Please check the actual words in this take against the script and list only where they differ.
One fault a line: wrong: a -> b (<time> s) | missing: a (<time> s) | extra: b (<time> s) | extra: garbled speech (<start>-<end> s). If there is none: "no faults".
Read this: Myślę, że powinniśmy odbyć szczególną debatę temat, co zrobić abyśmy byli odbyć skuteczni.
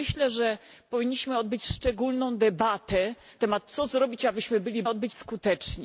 no faults